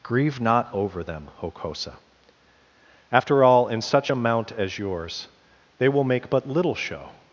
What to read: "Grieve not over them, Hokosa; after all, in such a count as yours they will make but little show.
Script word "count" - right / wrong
wrong